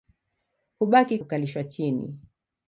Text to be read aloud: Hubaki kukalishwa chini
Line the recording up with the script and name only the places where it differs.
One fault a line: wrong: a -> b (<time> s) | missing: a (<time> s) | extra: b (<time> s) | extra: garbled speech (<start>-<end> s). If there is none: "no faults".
no faults